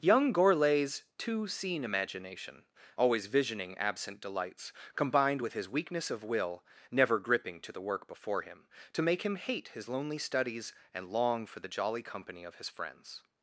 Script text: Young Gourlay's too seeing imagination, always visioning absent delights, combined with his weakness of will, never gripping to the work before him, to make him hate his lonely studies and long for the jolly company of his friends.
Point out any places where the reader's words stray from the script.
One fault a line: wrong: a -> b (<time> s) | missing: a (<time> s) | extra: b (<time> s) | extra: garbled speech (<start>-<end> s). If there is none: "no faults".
wrong: too seeing -> two scene (1.2 s)